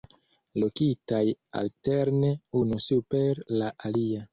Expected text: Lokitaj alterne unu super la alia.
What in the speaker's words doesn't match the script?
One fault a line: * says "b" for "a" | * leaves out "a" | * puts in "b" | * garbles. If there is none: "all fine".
all fine